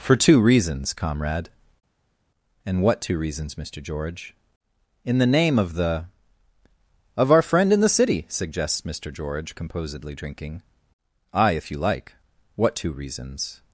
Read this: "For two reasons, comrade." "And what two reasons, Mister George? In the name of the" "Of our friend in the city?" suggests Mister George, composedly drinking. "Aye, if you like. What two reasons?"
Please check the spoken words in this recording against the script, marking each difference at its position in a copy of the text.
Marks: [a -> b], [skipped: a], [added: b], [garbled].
"For two reasons, comrade." "And what two reasons, Mister George? In the name of the" "Of our friend in the city?" suggests Mister George, composedly drinking. "Aye, if you like. What two reasons?"